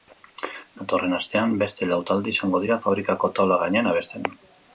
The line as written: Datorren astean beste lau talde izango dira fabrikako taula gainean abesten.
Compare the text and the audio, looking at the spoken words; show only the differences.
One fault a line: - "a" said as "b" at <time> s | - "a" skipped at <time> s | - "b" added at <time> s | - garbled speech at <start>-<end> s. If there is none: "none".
none